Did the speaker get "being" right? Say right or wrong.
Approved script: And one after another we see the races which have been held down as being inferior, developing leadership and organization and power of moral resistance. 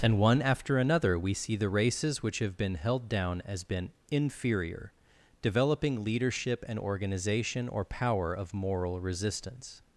wrong